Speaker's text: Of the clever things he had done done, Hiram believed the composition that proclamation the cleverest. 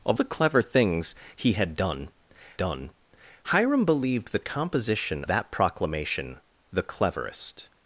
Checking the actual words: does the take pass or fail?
pass